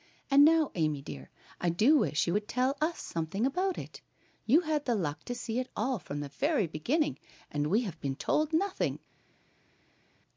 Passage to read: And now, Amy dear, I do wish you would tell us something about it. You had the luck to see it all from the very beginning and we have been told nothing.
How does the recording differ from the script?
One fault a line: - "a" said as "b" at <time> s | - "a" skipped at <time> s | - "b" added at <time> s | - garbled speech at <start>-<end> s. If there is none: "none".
none